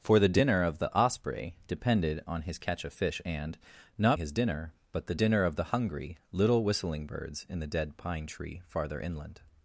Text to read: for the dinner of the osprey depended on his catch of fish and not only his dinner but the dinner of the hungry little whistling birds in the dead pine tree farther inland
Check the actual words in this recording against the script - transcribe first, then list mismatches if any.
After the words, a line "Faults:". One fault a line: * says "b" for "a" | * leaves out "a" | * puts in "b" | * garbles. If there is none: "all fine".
for the dinner of the osprey depended on his catch of fish and not his dinner but the dinner of the hungry little whistling birds in the dead pine tree farther inland
Faults:
* leaves out "only"